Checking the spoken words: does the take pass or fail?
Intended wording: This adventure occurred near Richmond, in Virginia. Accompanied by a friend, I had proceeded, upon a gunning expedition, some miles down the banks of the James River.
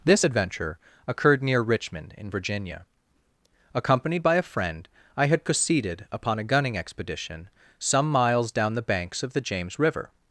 pass